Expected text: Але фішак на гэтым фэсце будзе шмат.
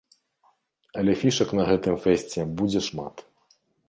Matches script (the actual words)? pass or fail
pass